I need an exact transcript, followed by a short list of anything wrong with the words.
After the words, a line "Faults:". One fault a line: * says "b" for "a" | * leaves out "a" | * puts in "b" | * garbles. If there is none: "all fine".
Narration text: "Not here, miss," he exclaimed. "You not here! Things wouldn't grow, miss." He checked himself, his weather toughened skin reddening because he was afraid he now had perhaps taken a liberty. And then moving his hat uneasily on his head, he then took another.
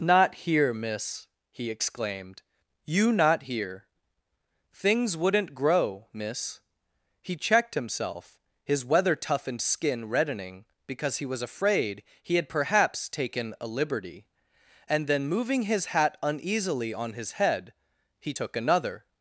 "Not here, miss," he exclaimed. "You not here! Things wouldn't grow, miss." He checked himself, his weather toughened skin reddening because he was afraid he had perhaps taken a liberty. And then moving his hat uneasily on his head, he took another.
Faults:
* leaves out "now"
* leaves out "then"